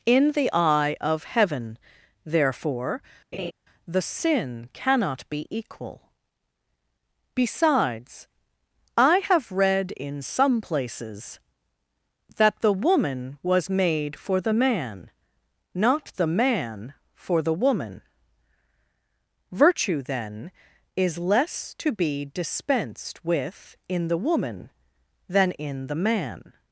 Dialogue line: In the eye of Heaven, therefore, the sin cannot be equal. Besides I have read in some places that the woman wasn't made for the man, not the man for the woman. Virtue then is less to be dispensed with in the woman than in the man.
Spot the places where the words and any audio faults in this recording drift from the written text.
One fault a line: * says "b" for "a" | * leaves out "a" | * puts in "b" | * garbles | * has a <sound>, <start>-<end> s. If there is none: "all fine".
* has a laugh, 3.3-3.5 s
* says "was" for "wasn't"